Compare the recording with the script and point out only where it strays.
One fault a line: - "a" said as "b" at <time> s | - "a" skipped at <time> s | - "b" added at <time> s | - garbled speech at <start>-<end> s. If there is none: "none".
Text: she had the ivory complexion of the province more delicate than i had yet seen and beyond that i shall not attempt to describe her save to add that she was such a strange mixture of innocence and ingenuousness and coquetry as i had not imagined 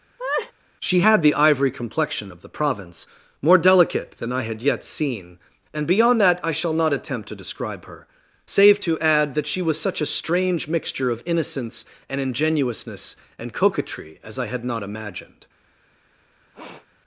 none